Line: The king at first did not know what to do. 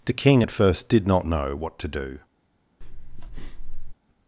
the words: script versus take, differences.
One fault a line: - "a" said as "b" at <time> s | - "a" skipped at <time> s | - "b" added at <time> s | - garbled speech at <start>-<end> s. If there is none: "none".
none